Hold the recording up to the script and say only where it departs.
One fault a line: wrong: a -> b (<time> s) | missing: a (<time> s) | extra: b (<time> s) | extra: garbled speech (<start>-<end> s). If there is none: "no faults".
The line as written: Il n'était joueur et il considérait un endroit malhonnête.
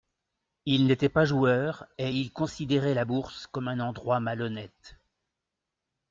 extra: pas (1.1 s)
extra: la Bourse comme (2.9 s)